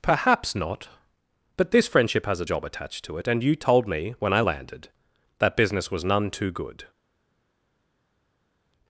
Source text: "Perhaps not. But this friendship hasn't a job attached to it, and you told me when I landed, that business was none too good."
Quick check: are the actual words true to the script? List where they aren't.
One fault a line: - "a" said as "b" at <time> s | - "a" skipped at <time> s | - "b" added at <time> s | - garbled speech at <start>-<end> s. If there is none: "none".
- "hasn't" said as "has" at 2.2 s